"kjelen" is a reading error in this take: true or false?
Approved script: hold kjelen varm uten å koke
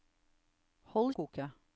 true